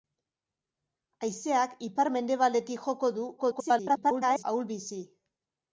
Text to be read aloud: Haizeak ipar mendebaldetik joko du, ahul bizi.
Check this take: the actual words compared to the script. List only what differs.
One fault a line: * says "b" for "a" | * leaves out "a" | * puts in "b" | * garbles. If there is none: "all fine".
* garbles